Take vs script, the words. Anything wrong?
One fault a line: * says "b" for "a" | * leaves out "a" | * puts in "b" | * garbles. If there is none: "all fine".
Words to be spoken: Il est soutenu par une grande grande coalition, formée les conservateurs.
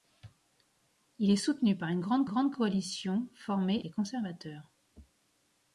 all fine